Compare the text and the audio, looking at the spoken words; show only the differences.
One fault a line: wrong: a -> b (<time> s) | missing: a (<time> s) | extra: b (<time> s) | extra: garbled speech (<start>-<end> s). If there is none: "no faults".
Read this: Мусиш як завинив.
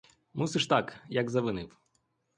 extra: так (0.6 s)